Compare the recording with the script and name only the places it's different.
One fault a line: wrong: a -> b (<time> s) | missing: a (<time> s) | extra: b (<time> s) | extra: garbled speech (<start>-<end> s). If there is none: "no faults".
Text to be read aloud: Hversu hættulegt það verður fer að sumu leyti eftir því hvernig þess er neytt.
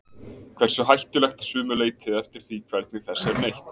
missing: það verður fer (1.4 s)